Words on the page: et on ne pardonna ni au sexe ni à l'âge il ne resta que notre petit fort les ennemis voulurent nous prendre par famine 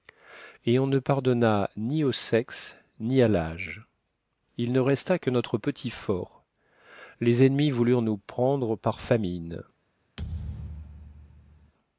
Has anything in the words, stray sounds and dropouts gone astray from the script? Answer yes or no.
yes